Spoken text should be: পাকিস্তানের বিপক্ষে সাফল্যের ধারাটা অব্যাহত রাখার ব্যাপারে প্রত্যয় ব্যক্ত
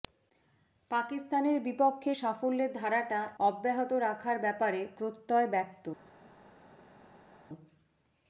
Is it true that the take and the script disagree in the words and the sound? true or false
false